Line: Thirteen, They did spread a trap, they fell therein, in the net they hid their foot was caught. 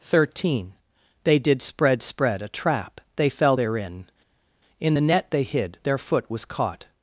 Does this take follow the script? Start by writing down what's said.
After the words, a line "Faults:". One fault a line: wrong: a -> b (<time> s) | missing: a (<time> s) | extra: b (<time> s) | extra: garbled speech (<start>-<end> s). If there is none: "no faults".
Thirteen, They did spread spread a trap, they fell therein, in the net they hid their foot was caught.
Faults:
extra: spread (2.0 s)